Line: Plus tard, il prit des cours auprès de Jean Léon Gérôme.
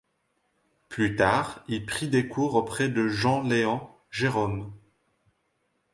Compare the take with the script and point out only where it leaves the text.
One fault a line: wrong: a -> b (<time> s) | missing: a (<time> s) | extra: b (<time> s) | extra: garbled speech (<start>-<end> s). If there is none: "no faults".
no faults